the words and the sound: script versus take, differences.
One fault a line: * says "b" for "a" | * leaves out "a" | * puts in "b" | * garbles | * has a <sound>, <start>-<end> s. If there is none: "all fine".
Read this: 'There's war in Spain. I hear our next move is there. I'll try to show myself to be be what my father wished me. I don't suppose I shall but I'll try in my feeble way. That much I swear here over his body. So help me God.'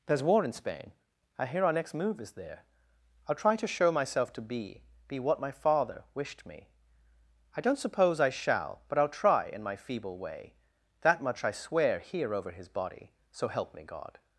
all fine